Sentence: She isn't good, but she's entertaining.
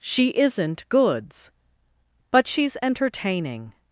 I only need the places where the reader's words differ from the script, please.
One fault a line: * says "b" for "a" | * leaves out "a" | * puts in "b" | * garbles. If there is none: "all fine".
* says "goods" for "good"